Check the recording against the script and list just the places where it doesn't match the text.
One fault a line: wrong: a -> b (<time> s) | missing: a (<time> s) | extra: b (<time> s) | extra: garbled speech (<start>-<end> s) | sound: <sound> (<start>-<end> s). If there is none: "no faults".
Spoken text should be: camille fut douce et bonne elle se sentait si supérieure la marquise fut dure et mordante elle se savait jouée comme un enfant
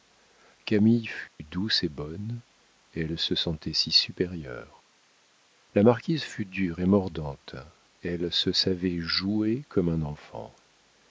sound: dropout (1.3-1.4 s)